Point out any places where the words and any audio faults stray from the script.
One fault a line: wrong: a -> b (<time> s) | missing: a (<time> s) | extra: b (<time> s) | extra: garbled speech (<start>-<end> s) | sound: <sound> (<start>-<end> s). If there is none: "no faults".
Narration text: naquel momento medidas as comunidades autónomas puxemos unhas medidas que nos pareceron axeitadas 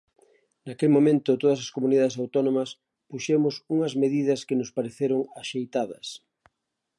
wrong: medidas -> todas (1.4 s)